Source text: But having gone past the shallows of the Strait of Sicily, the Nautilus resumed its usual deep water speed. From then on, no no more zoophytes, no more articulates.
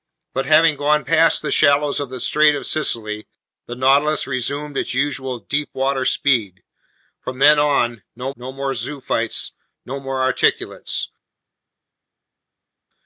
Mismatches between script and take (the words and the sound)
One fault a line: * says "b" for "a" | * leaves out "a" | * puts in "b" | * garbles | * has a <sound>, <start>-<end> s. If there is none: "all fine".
all fine